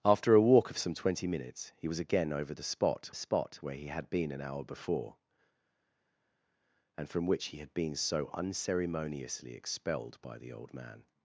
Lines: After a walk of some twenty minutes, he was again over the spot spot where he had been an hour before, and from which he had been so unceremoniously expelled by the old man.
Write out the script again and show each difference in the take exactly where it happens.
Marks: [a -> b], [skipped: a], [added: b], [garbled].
After a walk of some twenty minutes, he was again over the spot spot where he had been an hour before, and from which he had been so unceremoniously expelled by the old man.